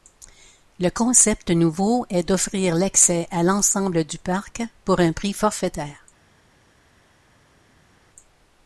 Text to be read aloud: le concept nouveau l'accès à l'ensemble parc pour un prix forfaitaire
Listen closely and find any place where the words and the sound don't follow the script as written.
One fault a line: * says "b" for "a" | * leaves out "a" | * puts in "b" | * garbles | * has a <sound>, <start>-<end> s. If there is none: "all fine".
* puts in "est d'offrir"
* puts in "du"